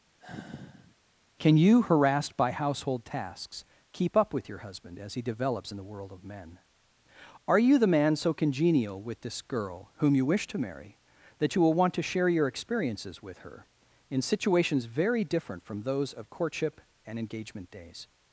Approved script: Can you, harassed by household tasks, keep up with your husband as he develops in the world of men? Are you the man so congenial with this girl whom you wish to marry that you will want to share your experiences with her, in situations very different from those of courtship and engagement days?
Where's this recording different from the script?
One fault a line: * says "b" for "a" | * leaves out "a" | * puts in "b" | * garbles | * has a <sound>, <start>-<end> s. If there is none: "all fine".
* has a sigh, 0.2-1.0 s